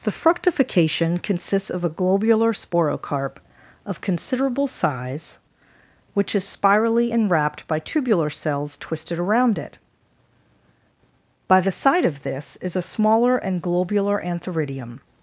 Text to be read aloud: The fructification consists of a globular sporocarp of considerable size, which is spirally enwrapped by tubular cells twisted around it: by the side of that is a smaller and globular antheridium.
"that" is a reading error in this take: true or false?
true